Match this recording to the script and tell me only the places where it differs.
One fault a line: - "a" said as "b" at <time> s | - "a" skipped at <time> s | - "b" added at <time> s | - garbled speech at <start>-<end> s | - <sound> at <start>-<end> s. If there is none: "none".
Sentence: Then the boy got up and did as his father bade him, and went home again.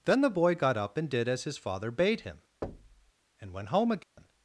- thud at 2.6-3.1 s
- dropout at 4.0-4.2 s